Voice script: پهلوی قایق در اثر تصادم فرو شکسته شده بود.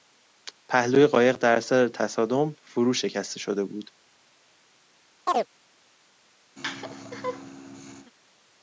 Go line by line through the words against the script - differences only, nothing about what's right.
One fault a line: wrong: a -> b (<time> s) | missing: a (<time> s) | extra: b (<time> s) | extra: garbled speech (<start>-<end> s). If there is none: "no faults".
no faults